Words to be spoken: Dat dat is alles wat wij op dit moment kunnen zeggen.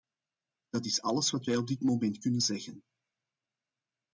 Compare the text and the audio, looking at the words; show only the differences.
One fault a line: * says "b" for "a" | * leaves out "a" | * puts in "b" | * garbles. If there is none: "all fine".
* leaves out "dat"